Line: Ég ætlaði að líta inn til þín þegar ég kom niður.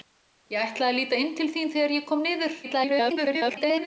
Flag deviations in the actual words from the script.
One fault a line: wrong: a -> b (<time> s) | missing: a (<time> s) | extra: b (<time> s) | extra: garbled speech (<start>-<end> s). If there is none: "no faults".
extra: garbled speech (2.6-3.9 s)